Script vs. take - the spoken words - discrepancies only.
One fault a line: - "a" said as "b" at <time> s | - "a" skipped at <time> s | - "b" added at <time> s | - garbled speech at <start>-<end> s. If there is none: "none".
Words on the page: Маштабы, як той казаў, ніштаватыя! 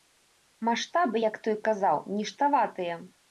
none